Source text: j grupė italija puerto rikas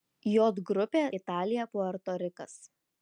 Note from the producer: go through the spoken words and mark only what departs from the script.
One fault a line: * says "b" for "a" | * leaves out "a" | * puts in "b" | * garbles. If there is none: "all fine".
all fine